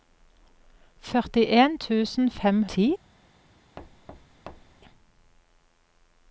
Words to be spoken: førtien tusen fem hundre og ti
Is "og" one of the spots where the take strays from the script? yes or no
yes